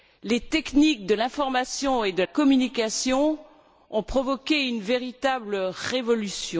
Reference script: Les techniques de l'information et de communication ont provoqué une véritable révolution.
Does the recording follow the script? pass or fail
pass